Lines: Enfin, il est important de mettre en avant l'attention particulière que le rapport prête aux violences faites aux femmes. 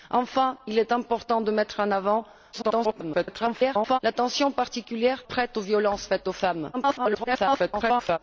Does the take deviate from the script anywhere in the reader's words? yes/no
yes